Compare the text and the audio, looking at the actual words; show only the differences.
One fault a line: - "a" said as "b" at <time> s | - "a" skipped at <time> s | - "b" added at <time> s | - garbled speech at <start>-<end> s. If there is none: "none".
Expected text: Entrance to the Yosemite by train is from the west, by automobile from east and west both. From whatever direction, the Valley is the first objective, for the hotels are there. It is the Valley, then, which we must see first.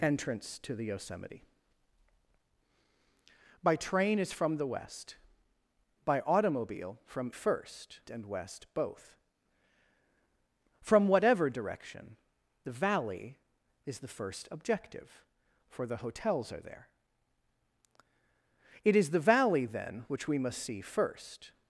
- "east" said as "first" at 7.3 s